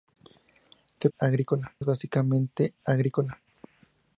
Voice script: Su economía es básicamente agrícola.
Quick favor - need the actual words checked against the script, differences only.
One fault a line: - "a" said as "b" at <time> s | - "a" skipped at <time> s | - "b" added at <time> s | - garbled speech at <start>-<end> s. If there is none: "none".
- "economía" said as "agrícola" at 1.2 s